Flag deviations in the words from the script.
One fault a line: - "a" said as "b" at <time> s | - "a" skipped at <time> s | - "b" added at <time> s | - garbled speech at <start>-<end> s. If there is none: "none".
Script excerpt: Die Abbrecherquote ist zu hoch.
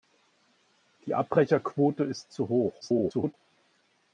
- garbled speech at 2.8-3.3 s